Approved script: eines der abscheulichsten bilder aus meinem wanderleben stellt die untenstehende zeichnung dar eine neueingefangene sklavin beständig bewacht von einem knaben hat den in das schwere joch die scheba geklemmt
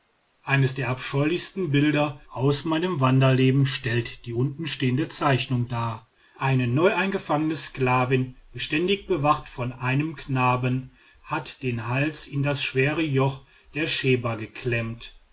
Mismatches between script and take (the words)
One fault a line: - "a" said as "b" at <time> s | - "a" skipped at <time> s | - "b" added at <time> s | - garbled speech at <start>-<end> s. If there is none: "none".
- "hals" added at 11.9 s
- "die" said as "der" at 13.7 s